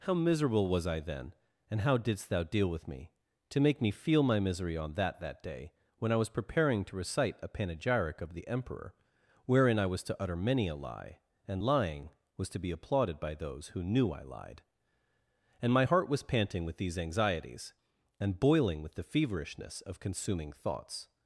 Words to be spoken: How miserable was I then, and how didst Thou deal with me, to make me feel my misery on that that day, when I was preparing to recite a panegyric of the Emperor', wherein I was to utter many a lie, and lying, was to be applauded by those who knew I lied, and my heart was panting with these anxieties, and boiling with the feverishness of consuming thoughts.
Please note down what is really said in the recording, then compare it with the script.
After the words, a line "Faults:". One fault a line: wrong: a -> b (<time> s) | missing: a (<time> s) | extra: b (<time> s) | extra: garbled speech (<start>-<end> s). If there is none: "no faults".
How miserable was I then, and how didst Thou deal with me, to make me feel my misery on that that day, when I was preparing to recite a panegyric of the Emperor', wherein I was to utter many a lie, and lying, was to be applauded by those who knew I lied, and my heart was panting with these anxieties, and boiling with the feverishness of consuming thoughts.
Faults:
no faults